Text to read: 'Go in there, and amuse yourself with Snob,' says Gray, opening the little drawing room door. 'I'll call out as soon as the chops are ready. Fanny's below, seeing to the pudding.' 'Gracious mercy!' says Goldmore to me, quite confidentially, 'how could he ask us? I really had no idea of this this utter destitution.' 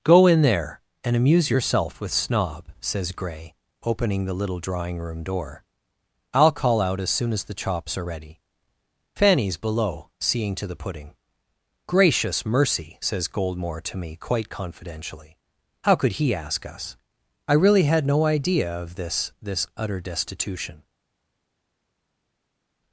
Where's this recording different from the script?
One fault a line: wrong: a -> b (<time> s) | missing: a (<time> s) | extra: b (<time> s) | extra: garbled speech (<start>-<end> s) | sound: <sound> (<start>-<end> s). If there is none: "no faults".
no faults